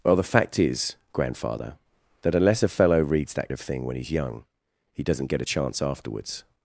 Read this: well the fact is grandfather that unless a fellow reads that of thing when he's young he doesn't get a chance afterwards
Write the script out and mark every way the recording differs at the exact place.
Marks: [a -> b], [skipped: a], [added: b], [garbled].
well the fact is grandfather that unless a fellow reads that of thing when he's young he doesn't get a chance afterwards